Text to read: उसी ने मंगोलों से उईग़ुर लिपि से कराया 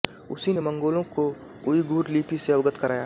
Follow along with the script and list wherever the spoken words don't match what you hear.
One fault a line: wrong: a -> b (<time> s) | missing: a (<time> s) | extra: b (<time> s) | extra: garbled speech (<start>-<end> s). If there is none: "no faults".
wrong: से -> को (1.2 s)
extra: अवगत (2.5 s)